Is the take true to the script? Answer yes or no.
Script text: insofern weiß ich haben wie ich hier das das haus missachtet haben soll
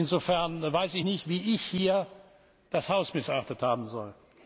no